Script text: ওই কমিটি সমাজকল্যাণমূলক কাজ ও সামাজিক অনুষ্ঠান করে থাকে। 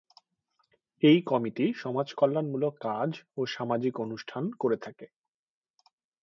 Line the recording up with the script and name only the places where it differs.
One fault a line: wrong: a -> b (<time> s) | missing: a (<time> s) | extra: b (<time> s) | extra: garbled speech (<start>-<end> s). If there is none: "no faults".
wrong: ওই -> এই (1.0 s)